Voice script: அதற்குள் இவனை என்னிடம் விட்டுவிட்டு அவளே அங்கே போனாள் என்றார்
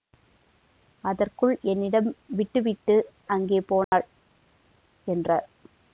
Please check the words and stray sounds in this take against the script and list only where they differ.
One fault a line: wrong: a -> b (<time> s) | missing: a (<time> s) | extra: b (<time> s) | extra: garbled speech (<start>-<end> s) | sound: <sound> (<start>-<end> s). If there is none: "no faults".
missing: இவனை (1.5 s)
missing: அவளே (3.0 s)
sound: dropout (3.8-3.9 s)